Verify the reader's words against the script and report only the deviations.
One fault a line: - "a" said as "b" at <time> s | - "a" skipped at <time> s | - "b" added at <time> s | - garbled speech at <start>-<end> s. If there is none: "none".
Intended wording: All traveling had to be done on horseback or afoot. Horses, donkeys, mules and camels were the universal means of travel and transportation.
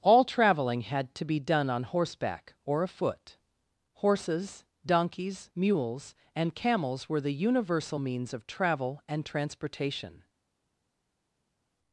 none